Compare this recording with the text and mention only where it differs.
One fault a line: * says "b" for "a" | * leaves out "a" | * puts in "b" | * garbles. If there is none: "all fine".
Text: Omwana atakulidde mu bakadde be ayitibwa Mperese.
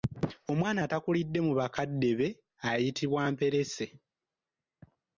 all fine